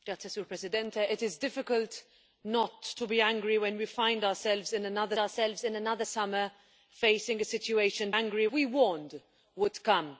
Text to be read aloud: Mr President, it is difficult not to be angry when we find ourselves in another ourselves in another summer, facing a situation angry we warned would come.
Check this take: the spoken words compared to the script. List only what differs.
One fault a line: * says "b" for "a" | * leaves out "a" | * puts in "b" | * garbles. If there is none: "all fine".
all fine